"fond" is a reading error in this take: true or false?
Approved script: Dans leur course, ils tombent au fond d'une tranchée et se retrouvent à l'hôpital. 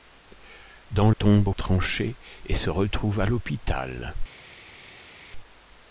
true